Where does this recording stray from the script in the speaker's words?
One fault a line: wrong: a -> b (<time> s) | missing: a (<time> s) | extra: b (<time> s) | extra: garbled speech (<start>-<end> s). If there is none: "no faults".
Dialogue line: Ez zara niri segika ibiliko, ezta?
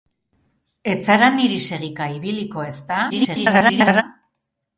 extra: garbled speech (3.1-4.0 s)